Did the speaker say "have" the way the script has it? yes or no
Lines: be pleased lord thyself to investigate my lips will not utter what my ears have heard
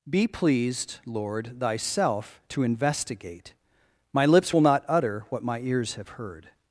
yes